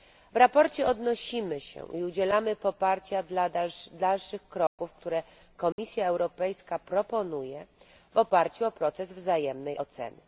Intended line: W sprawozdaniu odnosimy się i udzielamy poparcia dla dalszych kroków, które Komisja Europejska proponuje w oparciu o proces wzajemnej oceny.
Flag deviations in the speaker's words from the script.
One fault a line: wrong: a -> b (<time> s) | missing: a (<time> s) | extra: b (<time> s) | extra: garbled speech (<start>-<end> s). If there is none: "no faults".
no faults